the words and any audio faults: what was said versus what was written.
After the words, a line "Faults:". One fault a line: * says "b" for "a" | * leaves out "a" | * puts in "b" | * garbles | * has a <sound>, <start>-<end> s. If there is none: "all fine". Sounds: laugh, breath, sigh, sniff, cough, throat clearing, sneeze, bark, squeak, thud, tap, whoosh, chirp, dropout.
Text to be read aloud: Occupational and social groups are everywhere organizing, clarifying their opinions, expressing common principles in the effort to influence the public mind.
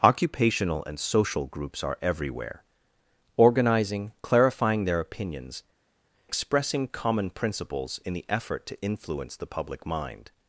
Occupational and social groups are everywhere organizing, clarifying their opinions, expressing common principles in the effort to influence the public mind.
Faults:
all fine